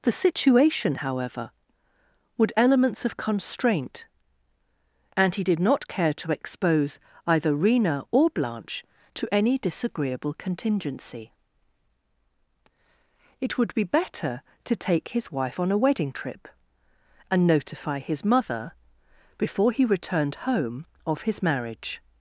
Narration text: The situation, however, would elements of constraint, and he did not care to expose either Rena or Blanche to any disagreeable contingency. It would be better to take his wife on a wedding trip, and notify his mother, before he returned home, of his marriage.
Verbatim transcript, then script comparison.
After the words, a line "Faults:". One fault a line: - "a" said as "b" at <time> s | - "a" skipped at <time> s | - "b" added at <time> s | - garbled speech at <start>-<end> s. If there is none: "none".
The situation, however, would elements of constraint, and he did not care to expose either Rena or Blanche to any disagreeable contingency. It would be better to take his wife on a wedding trip, and notify his mother, before he returned home, of his marriage.
Faults:
none